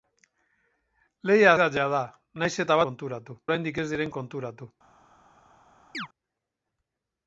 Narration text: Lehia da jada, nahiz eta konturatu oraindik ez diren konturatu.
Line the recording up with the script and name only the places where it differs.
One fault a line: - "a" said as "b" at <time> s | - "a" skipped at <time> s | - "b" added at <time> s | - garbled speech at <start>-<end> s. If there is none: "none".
none